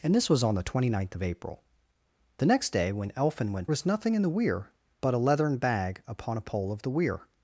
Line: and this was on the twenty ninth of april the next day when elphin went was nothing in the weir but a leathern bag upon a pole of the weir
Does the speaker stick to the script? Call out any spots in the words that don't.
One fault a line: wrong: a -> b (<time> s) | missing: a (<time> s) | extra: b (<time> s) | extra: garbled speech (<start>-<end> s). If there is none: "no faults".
no faults